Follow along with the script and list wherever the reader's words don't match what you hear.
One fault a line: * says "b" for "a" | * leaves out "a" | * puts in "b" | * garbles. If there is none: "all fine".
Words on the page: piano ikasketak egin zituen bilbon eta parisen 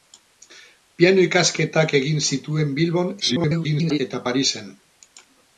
* garbles